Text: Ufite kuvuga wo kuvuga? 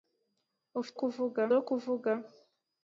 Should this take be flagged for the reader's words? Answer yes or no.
no